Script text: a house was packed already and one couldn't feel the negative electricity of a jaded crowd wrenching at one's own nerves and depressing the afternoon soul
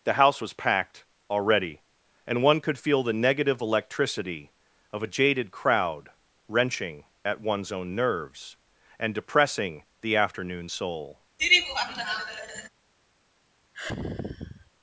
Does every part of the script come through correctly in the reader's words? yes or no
no